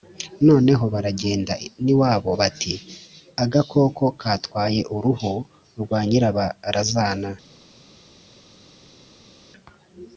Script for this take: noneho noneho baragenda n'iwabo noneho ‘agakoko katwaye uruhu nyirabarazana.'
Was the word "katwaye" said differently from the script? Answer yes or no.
no